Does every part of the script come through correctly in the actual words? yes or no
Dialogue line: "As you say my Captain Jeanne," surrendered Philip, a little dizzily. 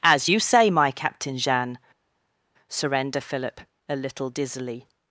no